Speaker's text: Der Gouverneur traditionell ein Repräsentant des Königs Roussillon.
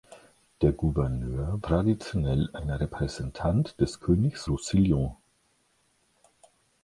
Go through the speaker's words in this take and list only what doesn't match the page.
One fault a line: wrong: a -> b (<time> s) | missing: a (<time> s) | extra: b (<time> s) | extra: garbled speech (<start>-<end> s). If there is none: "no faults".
no faults